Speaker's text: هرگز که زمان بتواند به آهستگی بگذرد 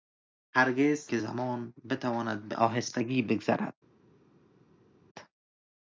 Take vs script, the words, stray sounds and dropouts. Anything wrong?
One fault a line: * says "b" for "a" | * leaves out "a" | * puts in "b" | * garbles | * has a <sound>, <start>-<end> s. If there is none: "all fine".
all fine